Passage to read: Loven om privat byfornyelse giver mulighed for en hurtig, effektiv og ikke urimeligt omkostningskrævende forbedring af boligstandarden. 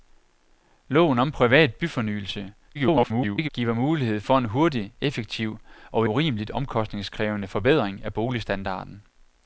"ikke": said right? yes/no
no